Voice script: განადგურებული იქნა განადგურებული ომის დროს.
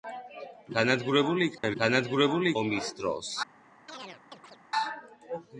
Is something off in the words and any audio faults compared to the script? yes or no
yes